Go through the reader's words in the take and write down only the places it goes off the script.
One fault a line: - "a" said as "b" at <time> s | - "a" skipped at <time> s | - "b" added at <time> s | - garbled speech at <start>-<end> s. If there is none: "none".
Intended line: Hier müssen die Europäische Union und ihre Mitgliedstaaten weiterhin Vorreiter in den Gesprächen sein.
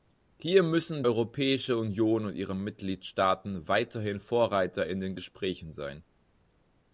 - "die" skipped at 1.0 s